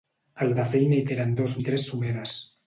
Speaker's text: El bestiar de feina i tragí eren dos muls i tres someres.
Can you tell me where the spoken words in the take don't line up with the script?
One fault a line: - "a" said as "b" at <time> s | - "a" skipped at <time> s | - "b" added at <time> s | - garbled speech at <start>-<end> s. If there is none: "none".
- "bestiar" skipped at 0.5 s
- "tragí" skipped at 1.1 s
- "muls" skipped at 1.6 s